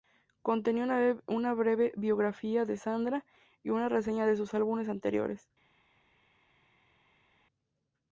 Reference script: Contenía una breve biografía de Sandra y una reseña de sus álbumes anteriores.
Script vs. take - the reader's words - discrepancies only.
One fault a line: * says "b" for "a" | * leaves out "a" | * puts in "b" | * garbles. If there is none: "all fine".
all fine